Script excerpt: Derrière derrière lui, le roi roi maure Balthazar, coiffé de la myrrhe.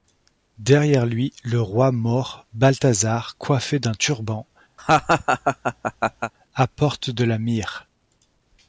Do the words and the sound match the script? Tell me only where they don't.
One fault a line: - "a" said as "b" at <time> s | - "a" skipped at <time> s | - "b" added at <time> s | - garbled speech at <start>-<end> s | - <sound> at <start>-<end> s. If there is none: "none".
- "derrière" skipped at 1.1 s
- "roi" skipped at 1.9 s
- "d'un turban apporte" added at 3.8 s
- laugh at 4.8-6.3 s